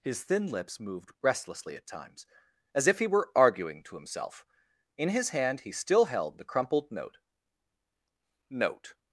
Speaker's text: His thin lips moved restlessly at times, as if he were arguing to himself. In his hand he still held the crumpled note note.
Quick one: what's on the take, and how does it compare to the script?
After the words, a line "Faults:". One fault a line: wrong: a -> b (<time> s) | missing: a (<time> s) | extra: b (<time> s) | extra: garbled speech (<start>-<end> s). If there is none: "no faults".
His thin lips moved restlessly at times, as if he were arguing to himself. In his hand he still held the crumpled note note.
Faults:
no faults